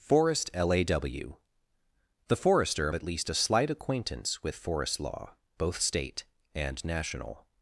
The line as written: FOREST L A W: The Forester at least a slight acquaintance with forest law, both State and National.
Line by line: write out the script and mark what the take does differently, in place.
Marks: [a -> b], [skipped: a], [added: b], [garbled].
FOREST L A W: The Forester at least a slight acquaintance with forest law, both State and National.